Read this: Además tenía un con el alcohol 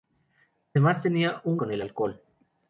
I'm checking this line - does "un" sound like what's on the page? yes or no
yes